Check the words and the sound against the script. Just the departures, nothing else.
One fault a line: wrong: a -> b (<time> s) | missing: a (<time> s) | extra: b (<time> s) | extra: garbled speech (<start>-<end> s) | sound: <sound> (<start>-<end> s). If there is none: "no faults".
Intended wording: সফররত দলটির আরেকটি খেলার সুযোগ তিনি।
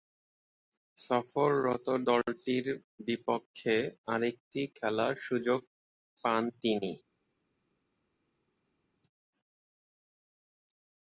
extra: বিপক্ষে (3.1 s)
extra: পান (6.2 s)